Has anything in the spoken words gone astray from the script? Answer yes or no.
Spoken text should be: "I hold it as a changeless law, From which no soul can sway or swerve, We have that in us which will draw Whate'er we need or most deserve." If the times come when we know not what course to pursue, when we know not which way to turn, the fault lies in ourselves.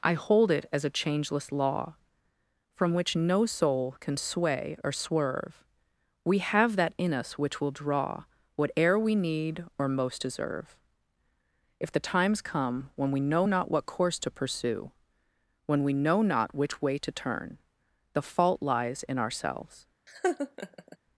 no